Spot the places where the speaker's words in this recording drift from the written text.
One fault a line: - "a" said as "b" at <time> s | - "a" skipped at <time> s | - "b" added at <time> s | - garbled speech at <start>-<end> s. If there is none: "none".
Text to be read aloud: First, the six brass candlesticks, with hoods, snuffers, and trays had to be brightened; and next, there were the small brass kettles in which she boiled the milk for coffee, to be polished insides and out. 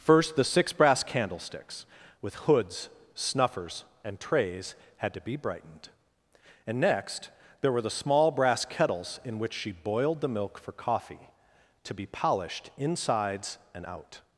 none